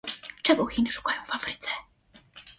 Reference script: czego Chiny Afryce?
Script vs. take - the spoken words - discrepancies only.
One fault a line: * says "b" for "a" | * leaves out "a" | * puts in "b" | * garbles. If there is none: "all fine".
* puts in "szukają w"